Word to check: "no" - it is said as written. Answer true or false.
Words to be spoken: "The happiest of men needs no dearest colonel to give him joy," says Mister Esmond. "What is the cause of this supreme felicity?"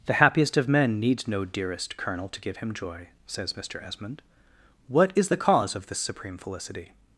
true